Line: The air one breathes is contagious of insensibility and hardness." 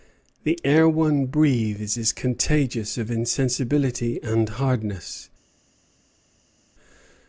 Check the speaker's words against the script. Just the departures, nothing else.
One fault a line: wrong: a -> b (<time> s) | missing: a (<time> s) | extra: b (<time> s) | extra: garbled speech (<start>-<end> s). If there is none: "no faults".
no faults